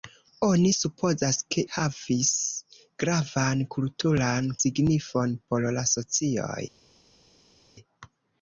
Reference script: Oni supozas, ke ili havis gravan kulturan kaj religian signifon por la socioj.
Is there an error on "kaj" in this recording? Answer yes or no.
yes